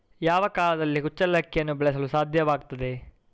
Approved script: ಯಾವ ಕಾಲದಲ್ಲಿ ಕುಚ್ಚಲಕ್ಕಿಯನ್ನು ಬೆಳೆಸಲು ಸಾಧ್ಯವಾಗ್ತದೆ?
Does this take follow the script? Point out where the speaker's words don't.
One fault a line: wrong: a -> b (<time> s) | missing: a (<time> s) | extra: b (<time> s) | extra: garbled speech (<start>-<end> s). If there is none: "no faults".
no faults